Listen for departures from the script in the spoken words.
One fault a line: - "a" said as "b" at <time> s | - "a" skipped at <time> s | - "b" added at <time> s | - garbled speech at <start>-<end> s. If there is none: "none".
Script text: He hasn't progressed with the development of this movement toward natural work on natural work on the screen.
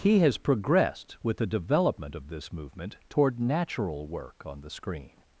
- "hasn't" said as "has" at 0.2 s
- "natural work on" skipped at 4.6 s